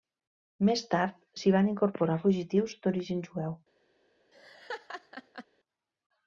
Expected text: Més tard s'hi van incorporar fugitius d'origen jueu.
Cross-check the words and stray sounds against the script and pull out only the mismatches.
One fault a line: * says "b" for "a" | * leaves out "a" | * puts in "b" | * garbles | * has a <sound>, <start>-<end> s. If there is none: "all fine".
* has a laugh, 4.3-5.5 s